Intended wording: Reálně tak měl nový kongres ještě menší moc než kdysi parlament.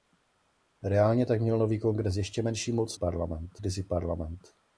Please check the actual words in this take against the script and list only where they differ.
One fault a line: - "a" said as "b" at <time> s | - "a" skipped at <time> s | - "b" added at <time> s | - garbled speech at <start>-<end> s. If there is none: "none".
- "než" said as "parlament" at 2.9 s